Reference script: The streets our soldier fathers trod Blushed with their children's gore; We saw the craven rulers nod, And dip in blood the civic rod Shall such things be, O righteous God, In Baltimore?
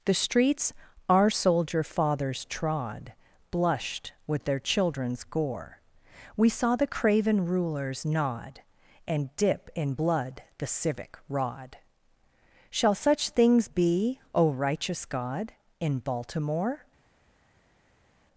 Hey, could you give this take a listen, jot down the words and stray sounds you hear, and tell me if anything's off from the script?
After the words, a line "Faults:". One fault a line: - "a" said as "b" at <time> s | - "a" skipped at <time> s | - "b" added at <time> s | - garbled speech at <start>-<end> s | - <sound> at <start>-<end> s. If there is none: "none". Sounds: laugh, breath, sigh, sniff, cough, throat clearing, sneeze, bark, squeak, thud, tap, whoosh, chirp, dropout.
The streets our soldier fathers trod Blushed with their children's gore; We saw the craven rulers nod, And dip in blood the civic rod Shall such things be, O righteous God, In Baltimore?
Faults:
none